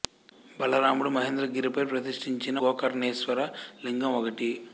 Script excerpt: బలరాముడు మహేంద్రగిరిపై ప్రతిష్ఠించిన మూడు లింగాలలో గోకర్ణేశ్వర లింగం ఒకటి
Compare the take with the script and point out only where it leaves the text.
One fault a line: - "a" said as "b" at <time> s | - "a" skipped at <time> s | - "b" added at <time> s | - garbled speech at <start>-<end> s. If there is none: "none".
- "మూడు లింగాలలో" skipped at 2.6 s